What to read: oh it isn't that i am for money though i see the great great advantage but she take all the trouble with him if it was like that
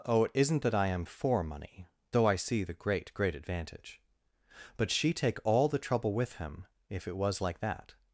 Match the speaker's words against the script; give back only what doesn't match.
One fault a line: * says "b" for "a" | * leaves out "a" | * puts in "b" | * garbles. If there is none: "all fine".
all fine